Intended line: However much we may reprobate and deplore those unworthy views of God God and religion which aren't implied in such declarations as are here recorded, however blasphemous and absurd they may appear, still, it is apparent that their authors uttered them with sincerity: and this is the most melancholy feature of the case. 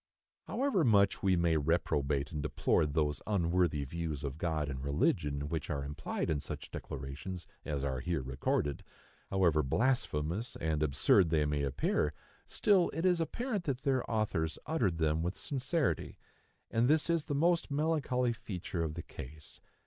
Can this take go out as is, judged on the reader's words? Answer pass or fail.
fail